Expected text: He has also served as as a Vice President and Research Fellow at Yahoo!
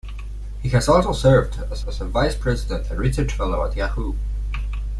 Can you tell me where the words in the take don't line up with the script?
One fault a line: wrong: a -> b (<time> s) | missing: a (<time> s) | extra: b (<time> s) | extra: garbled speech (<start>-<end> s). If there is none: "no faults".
no faults